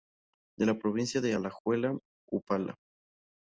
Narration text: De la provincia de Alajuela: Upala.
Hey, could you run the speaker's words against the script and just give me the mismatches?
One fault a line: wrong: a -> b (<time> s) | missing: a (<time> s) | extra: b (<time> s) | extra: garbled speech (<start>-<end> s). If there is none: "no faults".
no faults